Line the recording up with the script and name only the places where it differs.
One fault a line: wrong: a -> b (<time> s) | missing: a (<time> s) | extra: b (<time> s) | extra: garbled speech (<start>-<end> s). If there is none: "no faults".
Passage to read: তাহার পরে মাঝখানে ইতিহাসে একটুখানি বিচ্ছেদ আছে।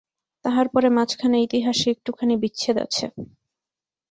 no faults